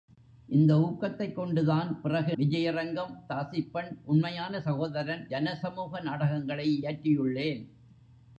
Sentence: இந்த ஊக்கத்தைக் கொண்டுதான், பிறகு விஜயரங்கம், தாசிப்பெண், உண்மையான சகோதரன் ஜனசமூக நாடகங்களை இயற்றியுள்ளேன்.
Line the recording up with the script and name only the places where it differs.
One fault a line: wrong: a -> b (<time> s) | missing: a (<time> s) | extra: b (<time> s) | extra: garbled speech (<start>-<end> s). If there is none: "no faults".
no faults